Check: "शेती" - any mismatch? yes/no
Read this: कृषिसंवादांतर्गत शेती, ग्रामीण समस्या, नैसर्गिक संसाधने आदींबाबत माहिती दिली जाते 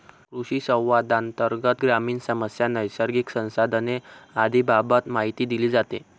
yes